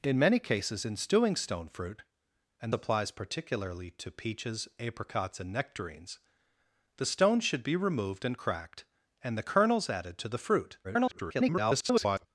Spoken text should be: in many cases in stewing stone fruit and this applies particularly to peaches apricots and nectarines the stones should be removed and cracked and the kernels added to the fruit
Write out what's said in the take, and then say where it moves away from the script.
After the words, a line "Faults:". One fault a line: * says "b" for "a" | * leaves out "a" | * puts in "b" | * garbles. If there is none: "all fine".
in many cases in stewing stone fruit and applies particularly to peaches apricots and nectarines the stones should be removed and cracked and the kernels added to the fruit [garbled]
Faults:
* leaves out "this"
* garbles